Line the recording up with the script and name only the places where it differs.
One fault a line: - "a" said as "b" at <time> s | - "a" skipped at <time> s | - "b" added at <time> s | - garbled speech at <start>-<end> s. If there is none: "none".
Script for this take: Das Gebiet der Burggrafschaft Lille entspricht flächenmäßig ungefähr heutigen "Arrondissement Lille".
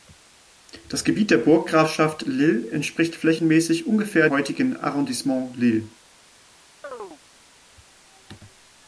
none